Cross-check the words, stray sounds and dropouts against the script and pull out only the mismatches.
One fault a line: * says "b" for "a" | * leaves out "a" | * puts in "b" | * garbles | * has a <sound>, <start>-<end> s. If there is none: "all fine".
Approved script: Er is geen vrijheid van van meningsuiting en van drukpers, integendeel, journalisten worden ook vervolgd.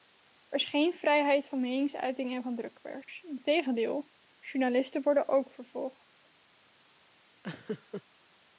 * leaves out "van"
* has a laugh, 7.4-8.0 s